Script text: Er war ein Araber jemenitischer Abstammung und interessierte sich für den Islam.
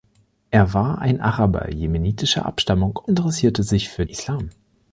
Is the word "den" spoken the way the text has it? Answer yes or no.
no